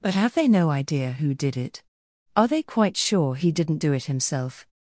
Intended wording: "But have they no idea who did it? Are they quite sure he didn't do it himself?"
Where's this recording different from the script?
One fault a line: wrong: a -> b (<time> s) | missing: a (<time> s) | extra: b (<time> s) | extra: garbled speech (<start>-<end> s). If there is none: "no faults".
no faults